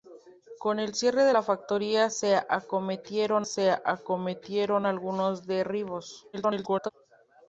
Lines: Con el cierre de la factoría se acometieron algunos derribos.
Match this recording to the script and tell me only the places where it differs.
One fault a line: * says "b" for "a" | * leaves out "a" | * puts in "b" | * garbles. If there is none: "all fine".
* puts in "se acometieron"
* garbles